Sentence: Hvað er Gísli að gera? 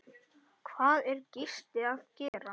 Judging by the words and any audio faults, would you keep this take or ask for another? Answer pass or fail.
fail